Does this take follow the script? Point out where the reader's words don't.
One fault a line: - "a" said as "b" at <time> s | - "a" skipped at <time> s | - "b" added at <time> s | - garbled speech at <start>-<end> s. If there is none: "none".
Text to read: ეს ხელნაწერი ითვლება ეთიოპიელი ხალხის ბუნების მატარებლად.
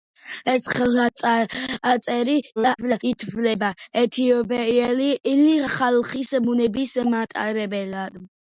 - garbled speech at 2.6-3.0 s